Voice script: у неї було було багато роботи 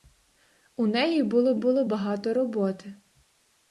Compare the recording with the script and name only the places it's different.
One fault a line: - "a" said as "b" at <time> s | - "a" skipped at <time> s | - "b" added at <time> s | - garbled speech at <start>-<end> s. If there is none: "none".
none